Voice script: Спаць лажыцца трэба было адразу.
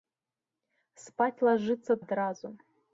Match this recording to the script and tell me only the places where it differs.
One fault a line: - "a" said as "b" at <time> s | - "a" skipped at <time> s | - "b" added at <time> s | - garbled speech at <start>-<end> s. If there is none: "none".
- "трэба было" skipped at 2.0 s